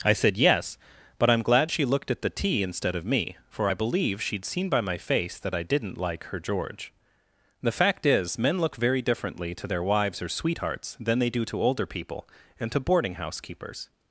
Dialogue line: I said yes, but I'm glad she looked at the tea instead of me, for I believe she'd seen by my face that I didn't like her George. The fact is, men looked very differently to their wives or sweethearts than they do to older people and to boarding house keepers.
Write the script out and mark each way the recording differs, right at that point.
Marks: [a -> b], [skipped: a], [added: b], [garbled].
I said yes, but I'm glad she looked at the tea instead of me, for I believe she'd seen by my face that I didn't like her George. The fact is, men [looked -> look] very differently to their wives or sweethearts than they do to older people and to boarding house keepers.